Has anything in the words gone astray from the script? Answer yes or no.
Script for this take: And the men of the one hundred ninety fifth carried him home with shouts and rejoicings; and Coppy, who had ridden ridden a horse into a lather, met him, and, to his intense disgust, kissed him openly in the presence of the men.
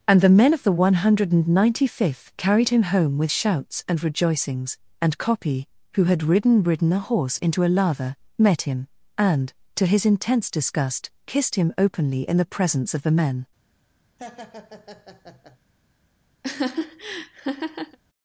no